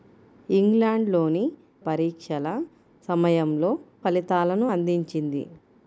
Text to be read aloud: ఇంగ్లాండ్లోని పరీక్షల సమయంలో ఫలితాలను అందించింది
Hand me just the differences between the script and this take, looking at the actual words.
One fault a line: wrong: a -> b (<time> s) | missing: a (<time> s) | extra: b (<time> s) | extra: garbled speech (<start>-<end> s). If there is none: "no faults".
no faults